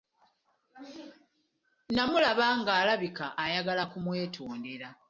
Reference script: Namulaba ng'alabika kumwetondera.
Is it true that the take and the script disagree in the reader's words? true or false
true